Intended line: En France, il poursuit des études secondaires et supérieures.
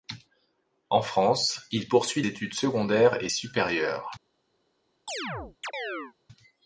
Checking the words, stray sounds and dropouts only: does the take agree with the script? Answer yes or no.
no